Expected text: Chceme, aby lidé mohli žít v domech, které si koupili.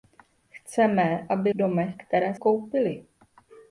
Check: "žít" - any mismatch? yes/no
yes